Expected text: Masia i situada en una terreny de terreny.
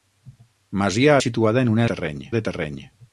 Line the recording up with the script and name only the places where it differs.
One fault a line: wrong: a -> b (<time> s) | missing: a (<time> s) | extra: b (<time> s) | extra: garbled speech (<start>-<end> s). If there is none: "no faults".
no faults